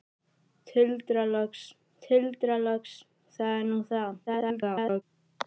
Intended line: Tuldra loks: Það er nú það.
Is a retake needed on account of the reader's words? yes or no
yes